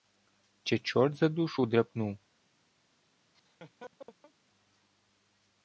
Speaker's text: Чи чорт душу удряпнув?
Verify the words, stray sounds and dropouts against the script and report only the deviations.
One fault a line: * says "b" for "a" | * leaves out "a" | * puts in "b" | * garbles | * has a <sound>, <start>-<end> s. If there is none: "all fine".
* puts in "за"
* has a laugh, 3.3-4.3 s